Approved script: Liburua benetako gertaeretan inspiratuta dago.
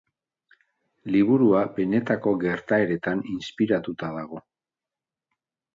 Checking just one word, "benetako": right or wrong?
right